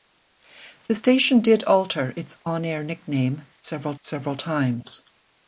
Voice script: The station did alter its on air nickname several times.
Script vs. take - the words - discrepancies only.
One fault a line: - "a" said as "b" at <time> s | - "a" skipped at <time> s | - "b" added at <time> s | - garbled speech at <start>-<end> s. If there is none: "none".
- "several" added at 4.0 s